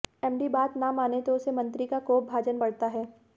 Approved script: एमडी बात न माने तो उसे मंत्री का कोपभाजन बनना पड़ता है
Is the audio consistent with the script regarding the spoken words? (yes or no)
no